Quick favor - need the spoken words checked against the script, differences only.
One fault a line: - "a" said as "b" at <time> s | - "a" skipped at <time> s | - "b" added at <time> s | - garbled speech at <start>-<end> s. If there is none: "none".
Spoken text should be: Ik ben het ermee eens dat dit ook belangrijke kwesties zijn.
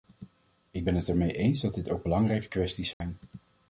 none